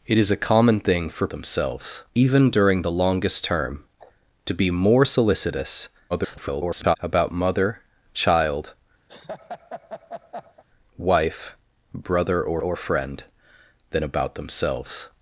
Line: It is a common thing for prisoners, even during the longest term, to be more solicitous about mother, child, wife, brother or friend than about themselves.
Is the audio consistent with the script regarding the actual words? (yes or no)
no